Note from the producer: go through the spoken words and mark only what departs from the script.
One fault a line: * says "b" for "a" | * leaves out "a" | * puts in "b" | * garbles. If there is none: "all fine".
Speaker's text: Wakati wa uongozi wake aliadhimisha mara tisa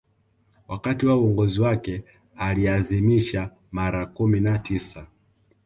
* puts in "kumi na"